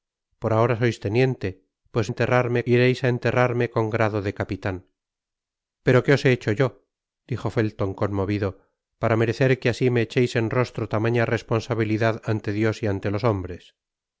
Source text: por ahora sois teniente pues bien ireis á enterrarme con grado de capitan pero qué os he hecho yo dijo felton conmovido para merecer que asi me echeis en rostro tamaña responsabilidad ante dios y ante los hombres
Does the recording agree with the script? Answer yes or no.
no